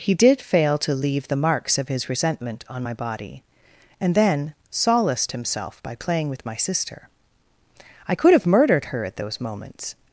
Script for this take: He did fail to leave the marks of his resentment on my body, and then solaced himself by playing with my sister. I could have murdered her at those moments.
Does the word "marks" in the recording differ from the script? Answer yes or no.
no